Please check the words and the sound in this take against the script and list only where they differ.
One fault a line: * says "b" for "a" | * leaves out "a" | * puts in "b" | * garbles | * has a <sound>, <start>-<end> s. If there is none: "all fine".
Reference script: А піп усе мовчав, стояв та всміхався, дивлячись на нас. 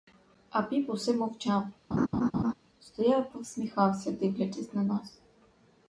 * has a laugh, 1.9-2.5 s